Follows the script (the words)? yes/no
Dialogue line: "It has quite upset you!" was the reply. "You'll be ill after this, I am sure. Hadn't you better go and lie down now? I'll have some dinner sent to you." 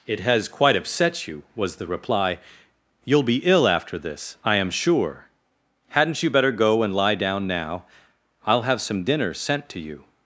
yes